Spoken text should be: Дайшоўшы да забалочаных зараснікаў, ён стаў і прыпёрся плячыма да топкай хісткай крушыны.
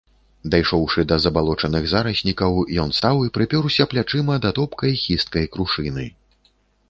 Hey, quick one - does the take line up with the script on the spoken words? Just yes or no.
yes